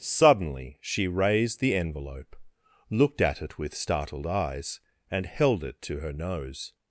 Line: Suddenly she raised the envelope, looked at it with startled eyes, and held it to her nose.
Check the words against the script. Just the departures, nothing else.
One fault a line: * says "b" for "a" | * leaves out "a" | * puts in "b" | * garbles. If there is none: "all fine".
all fine